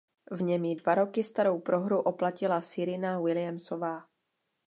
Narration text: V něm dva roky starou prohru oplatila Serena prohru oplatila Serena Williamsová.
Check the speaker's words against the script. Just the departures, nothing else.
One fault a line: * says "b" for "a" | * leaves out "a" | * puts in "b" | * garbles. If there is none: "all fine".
* puts in "ji"
* leaves out "prohru oplatila Serena"